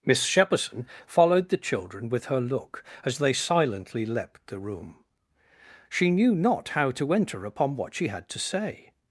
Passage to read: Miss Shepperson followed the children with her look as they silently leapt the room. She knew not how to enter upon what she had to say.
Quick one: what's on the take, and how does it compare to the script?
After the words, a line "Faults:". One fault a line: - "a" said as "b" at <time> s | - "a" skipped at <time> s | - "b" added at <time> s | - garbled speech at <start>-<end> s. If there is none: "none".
Miss Shepperson followed the children with her look as they silently leapt the room. She knew not how to enter upon what she had to say.
Faults:
none